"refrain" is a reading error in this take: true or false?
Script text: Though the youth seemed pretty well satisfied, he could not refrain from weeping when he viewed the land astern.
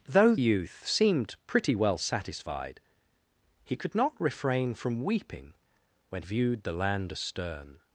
false